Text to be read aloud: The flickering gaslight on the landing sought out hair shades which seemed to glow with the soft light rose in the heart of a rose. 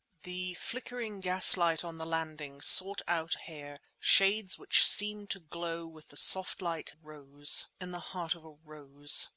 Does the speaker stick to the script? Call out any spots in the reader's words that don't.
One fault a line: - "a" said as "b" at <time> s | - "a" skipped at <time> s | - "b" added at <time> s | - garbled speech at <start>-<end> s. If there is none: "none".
none